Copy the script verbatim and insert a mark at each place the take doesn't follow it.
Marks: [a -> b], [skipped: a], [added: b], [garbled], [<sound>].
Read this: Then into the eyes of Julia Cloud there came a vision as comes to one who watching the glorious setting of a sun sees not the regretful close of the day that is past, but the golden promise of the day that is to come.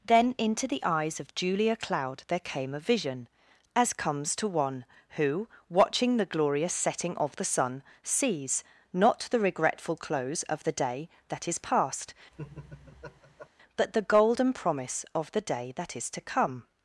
Then into the eyes of Julia Cloud there came a vision as comes to one who watching the glorious setting of [a -> the] sun sees not the regretful close of the day that is past, [laugh] but the golden promise of the day that is to come.